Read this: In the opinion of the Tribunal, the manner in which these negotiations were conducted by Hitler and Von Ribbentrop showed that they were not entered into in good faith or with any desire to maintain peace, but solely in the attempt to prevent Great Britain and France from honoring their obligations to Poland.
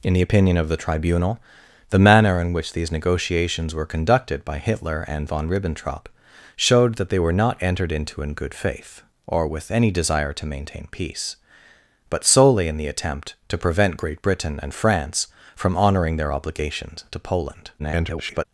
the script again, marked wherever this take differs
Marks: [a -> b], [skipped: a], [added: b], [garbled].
In the opinion of the Tribunal, the manner in which these negotiations were conducted by Hitler and Von Ribbentrop showed that they were not entered into in good faith or with any desire to maintain peace, but solely in the attempt to prevent Great Britain and France from honoring their obligations to Poland. [garbled]